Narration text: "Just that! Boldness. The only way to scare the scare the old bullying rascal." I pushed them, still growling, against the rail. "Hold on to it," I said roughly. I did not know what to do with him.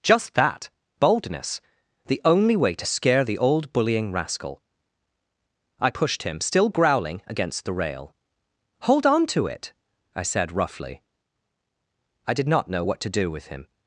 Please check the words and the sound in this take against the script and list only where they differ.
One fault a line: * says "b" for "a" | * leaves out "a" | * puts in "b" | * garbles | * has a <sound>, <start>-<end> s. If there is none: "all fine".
* leaves out "scare the"
* says "him" for "them"